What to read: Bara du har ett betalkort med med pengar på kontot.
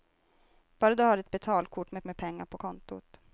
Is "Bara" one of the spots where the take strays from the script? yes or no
no